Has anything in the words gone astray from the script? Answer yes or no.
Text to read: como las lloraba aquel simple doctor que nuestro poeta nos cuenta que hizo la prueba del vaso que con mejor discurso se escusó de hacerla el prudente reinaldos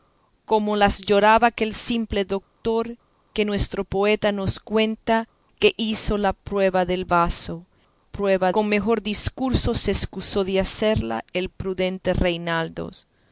yes